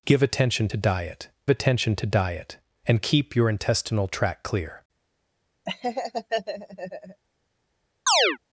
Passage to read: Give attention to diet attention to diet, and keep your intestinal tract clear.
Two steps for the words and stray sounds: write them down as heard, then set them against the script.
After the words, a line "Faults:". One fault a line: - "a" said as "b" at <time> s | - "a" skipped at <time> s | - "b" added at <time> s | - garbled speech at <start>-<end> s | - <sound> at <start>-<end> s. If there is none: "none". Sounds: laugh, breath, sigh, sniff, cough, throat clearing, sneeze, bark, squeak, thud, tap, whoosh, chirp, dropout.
Give attention to diet attention to diet, and keep your intestinal tract clear.
Faults:
- laugh at 5.7-7.2 s
- chirp at 8.1-8.4 s